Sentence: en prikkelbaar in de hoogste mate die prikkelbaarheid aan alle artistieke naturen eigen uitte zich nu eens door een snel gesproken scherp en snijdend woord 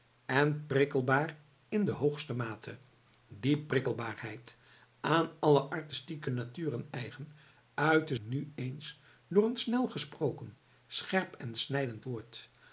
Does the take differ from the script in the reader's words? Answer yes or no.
yes